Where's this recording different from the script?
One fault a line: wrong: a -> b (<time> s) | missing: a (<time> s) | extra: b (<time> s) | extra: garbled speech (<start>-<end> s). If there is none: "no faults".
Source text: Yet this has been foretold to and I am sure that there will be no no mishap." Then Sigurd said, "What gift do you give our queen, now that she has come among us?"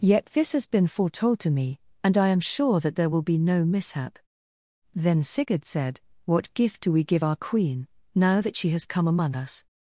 extra: me (1.5 s)
missing: no (3.6 s)
wrong: you -> we (6.9 s)